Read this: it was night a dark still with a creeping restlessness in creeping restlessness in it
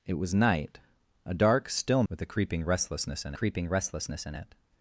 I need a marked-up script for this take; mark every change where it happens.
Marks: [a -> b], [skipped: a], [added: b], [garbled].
it was night a dark still with a creeping restlessness in creeping restlessness in it